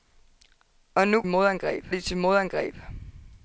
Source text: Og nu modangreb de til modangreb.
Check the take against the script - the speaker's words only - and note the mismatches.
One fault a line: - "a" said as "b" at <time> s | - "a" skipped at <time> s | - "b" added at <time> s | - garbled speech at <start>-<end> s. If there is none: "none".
none